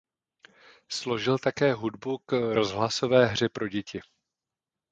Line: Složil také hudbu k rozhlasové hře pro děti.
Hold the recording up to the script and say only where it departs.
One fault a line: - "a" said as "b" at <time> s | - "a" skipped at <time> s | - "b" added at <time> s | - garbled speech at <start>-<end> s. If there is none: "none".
none